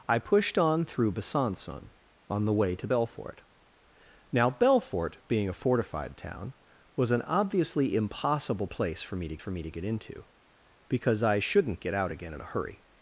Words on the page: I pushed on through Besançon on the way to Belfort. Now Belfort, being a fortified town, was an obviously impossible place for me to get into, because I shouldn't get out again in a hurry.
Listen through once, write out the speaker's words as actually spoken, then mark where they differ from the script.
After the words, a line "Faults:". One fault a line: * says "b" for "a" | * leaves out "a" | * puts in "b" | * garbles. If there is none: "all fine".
I pushed on through Besançon on the way to Belfort. Now Belfort, being a fortified town, was an obviously impossible place for me to for me to get into, because I shouldn't get out again in a hurry.
Faults:
* puts in "for me to"